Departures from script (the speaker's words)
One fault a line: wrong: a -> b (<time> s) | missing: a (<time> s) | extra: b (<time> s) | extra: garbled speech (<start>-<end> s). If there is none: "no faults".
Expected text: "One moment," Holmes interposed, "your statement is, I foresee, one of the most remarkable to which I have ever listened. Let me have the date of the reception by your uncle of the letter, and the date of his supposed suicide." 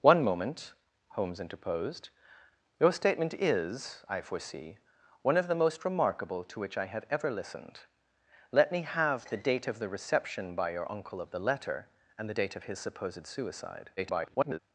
extra: garbled speech (14.0-14.6 s)